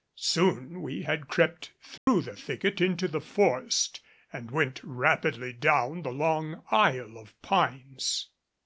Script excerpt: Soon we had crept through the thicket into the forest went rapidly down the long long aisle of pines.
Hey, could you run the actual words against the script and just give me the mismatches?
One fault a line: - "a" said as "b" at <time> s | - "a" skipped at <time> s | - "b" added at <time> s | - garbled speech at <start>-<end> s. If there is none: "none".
- "and" added at 4.3 s
- "long" skipped at 6.6 s